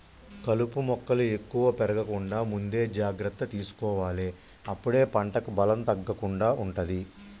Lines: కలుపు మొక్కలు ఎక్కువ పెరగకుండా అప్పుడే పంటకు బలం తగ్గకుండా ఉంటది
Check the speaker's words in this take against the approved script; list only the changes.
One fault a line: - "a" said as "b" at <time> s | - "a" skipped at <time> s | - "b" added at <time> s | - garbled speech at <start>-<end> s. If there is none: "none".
- "ముందే జాగ్రత్త తీసుకోవాలె" added at 2.5 s